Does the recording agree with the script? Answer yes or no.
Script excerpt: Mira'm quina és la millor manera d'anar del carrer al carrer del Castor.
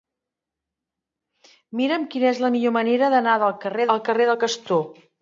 yes